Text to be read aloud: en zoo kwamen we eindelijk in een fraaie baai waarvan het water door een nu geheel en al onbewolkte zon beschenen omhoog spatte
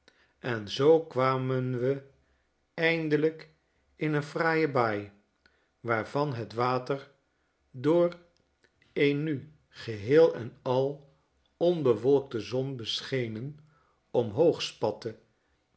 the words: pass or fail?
pass